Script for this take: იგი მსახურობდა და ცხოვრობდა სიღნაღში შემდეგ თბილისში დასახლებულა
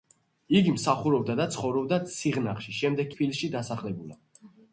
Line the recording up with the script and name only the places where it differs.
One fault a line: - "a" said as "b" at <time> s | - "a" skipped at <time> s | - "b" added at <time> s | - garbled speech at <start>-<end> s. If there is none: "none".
none